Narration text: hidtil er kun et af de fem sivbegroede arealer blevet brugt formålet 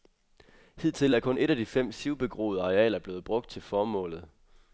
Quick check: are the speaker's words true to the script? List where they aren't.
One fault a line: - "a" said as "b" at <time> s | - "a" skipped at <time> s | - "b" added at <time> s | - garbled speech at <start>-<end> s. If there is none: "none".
- "til" added at 3.5 s